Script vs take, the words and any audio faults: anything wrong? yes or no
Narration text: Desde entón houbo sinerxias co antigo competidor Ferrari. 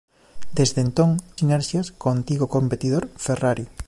yes